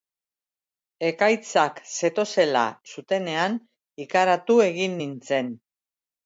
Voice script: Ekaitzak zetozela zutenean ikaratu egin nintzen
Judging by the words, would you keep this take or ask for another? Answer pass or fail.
pass